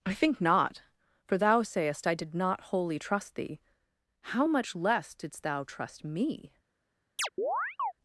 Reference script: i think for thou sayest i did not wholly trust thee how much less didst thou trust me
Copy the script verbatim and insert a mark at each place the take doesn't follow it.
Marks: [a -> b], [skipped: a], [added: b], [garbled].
i think [added: not] for thou sayest i did not wholly trust thee how much less didst thou trust me